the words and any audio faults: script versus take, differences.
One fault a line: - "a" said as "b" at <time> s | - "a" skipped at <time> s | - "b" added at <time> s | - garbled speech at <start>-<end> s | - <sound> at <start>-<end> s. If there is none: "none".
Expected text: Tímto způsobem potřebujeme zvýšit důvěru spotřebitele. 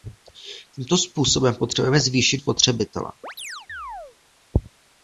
- "důvěru" skipped at 2.4 s
- chirp at 3.2-4.2 s